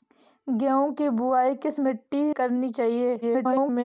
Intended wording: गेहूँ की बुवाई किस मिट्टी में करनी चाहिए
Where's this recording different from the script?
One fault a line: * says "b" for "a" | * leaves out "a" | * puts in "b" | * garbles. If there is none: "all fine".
* leaves out "में"
* garbles